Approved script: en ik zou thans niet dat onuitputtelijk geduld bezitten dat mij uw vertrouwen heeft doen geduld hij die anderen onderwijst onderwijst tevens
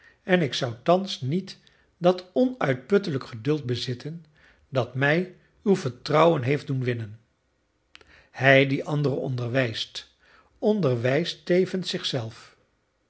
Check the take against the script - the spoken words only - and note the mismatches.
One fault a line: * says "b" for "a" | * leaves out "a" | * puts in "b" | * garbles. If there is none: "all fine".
* says "winnen" for "geduld"